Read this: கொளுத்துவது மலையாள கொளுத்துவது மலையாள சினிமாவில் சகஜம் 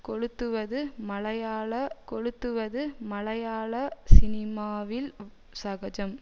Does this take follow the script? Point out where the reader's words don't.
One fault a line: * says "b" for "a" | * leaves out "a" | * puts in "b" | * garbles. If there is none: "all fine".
all fine